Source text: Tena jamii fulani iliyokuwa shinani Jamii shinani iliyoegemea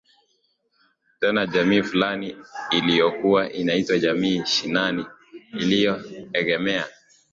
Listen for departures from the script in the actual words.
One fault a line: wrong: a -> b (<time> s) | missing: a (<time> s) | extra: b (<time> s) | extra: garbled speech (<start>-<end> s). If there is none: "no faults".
wrong: shinani -> inaitwa (3.5 s)